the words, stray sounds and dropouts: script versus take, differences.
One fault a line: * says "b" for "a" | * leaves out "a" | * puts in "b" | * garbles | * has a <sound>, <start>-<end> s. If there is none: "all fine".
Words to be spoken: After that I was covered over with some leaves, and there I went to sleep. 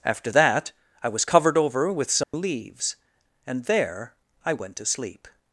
* has a dropout, 2.2-2.3 s